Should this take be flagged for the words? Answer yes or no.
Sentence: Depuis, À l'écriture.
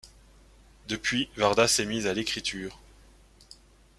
yes